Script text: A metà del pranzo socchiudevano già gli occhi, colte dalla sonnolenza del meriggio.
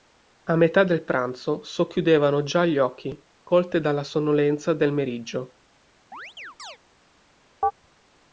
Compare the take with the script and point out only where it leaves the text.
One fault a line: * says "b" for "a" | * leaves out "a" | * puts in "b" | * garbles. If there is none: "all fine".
all fine